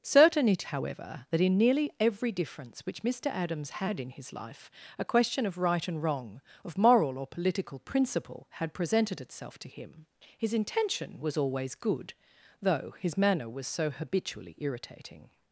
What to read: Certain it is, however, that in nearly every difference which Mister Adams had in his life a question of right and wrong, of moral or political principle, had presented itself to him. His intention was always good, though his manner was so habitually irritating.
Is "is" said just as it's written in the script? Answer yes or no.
no